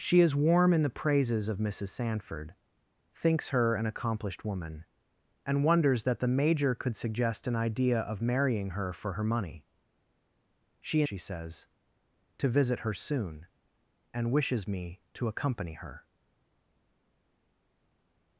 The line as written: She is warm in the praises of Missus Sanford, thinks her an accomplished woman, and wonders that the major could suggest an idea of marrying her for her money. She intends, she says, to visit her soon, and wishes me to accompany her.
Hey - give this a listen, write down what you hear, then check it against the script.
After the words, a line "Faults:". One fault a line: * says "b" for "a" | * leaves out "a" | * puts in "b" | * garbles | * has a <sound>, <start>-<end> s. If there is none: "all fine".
She is warm in the praises of Missus Sanford, thinks her an accomplished woman, and wonders that the major could suggest an idea of marrying her for her money. She she says, to visit her soon, and wishes me to accompany her.
Faults:
* leaves out "intends"